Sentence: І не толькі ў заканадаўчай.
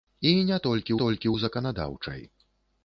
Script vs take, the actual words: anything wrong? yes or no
yes